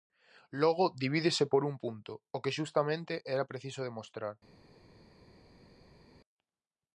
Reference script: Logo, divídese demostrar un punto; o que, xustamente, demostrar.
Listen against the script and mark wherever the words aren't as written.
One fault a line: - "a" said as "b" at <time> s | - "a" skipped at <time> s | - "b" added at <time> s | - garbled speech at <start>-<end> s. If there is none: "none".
- "demostrar" said as "por" at 1.5 s
- "era preciso" added at 3.3 s